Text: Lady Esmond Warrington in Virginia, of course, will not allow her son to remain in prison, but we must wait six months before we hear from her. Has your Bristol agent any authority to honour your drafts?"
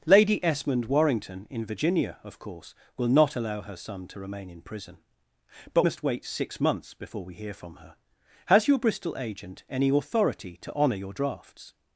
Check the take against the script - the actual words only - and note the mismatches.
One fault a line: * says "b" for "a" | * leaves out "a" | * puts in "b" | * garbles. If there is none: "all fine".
* leaves out "we"